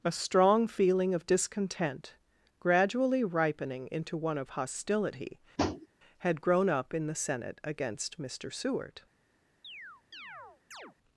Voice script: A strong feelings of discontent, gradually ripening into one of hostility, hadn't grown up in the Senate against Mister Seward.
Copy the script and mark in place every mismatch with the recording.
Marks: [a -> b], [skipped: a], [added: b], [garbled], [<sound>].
A strong [feelings -> feeling] of discontent, gradually ripening into one of hostility, [tap] [hadn't -> had] grown up in the Senate against Mister Seward. [chirp]